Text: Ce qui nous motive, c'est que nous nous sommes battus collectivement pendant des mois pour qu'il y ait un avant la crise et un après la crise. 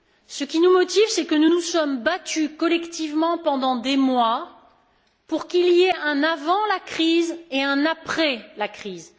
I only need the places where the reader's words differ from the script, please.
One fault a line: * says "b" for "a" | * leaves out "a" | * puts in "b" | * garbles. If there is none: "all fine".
all fine